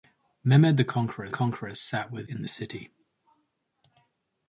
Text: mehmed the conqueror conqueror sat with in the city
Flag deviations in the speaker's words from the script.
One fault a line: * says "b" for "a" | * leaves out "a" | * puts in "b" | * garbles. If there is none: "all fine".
all fine